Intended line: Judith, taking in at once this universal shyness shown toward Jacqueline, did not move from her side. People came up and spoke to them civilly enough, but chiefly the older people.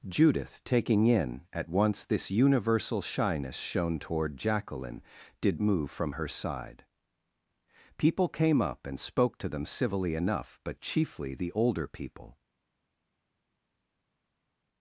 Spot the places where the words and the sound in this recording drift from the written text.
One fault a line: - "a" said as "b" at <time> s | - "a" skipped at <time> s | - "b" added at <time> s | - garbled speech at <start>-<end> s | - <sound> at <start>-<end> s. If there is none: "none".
- "not" skipped at 5.6 s